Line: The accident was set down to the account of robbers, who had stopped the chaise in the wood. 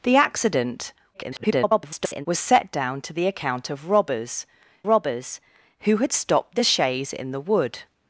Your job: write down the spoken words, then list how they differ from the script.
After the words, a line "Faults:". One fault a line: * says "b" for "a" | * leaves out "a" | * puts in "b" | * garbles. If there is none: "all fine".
The accident [garbled] was set down to the account of robbers robbers, who had stopped the chaise in the wood.
Faults:
* garbles
* puts in "robbers"